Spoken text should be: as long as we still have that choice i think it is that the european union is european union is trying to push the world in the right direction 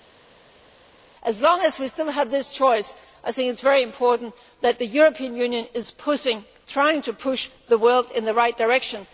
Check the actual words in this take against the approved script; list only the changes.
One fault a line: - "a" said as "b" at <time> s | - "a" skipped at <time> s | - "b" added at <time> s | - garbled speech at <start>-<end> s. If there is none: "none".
- "that" said as "this" at 2.3 s
- "very important" added at 3.6 s
- "european union is" skipped at 5.9 s